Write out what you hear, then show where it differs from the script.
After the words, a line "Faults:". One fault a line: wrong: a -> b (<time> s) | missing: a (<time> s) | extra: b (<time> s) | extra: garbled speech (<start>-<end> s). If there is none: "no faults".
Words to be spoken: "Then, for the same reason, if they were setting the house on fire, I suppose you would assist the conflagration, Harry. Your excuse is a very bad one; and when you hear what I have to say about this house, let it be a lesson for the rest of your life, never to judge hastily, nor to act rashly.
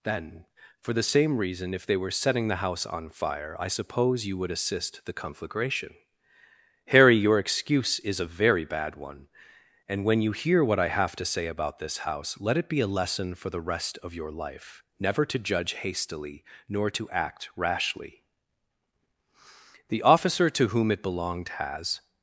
"Then, for the same reason, if they were setting the house on fire, I suppose you would assist the conflagration, Harry. Your excuse is a very bad one; and when you hear what I have to say about this house, let it be a lesson for the rest of your life, never to judge hastily, nor to act rashly. The officer to whom it belonged, has
Faults:
extra: The officer to whom it belonged has (19.9 s)